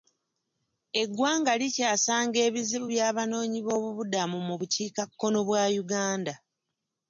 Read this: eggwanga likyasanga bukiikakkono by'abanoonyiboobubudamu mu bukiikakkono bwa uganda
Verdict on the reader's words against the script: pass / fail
fail